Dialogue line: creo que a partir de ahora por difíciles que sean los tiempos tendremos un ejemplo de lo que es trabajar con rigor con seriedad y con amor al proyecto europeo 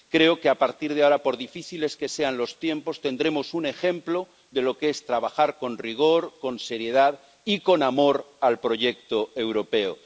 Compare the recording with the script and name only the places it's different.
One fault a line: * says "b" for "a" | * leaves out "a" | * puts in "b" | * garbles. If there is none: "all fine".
all fine